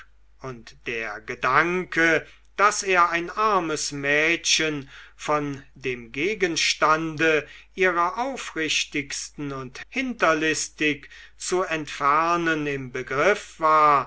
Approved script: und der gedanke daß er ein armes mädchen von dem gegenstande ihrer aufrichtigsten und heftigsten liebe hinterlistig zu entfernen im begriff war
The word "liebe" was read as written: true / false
false